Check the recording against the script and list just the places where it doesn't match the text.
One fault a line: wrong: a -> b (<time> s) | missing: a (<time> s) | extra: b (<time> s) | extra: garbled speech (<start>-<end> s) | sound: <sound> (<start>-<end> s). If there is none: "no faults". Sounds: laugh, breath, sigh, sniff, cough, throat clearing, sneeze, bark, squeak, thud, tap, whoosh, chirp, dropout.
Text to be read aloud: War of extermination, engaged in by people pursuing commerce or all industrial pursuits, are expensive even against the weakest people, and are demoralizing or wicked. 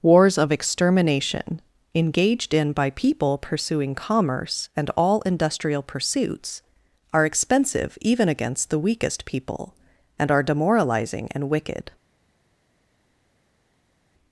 wrong: War -> Wars (0.0 s)
wrong: or -> and (4.7 s)
wrong: or -> and (11.3 s)